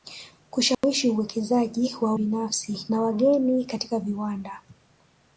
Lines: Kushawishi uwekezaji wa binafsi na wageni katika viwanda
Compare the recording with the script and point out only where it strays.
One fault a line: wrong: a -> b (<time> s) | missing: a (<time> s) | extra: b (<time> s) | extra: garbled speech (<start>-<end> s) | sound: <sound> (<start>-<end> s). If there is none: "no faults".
sound: dropout (0.7-0.8 s)